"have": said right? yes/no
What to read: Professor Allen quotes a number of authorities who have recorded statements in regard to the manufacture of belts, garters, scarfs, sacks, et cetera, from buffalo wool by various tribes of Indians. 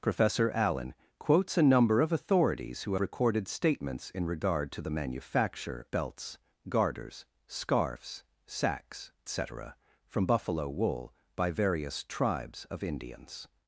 no